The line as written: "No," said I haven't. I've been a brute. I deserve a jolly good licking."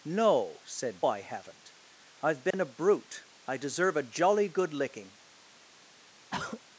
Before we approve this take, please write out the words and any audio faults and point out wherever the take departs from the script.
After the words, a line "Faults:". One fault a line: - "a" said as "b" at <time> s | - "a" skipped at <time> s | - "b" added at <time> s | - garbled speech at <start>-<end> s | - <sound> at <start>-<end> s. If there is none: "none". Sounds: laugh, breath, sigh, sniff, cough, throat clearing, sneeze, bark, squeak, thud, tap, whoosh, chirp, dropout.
"No," said I haven't. I've been a brute. I deserve a jolly good licking."
Faults:
- dropout at 2.5-2.5 s
- throat clearing at 6.3-6.6 s